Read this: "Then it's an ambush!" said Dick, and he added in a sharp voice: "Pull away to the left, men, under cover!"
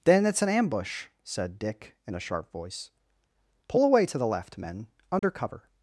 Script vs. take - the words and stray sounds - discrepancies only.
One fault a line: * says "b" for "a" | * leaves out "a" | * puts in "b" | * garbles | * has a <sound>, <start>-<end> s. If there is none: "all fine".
* leaves out "and he added"
* has a dropout, 5.2-5.2 s